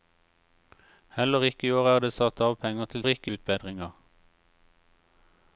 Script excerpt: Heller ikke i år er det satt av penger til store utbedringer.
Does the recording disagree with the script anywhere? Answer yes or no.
yes